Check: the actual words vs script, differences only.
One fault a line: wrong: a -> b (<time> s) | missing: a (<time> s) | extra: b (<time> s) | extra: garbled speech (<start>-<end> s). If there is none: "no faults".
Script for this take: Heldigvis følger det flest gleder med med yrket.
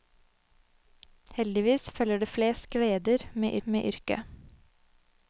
no faults